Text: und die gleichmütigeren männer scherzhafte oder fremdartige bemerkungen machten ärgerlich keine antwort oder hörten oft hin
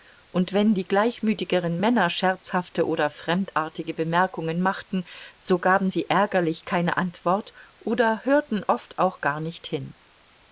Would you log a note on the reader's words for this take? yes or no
yes